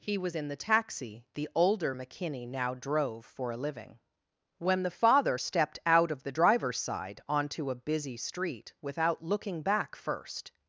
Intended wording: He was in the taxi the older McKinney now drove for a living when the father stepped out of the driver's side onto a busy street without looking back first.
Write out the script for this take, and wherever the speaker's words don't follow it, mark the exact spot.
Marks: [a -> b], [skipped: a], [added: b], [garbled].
He was in the taxi the older McKinney now drove for a living when the father stepped out of the driver's side onto a busy street without looking back first.